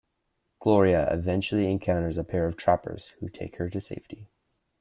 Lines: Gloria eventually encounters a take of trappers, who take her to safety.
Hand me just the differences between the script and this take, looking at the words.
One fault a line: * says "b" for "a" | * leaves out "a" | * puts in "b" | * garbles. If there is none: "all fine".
* says "pair" for "take"